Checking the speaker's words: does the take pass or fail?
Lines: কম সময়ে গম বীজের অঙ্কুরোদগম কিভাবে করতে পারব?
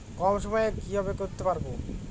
fail